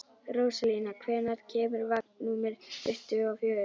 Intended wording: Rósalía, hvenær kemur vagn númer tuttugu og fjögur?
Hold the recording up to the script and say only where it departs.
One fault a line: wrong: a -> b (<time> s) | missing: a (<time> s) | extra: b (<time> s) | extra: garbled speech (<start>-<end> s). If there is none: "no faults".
no faults